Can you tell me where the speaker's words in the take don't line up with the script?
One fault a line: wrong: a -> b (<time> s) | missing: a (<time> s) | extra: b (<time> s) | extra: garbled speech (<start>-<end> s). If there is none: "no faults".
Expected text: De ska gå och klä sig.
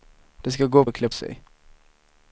no faults